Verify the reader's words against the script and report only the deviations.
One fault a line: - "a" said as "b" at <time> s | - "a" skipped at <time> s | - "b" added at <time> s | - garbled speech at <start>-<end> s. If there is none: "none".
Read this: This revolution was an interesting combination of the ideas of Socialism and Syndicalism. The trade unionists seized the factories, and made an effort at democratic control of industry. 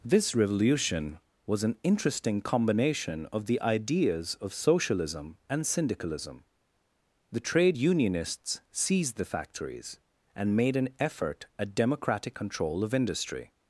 none